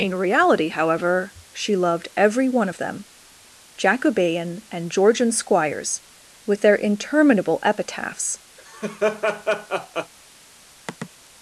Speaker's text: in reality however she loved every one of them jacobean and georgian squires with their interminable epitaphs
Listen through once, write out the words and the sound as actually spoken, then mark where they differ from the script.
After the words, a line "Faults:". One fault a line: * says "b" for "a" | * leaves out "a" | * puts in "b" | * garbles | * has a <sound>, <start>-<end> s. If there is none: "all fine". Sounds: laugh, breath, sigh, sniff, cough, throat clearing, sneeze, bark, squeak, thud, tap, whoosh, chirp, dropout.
in reality however she loved every one of them jacobean and georgian squires with their interminable epitaphs
Faults:
* has a laugh, 8.6-10.1 s
* has a sigh, 10.9-11.1 s